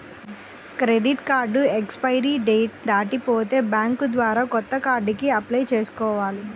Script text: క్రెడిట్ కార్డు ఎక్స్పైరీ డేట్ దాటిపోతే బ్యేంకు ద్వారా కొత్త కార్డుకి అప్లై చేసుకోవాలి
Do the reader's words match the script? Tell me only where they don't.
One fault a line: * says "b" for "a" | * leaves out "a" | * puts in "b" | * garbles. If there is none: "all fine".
all fine